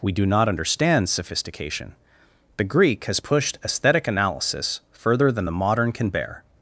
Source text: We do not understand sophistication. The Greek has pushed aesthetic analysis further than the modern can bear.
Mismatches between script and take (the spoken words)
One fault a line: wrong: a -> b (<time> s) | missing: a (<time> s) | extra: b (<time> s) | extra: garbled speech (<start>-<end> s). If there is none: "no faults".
no faults